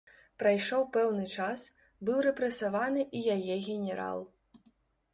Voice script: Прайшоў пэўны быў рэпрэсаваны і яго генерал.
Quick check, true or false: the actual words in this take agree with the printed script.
false